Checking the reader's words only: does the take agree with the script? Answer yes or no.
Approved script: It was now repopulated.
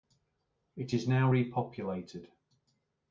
no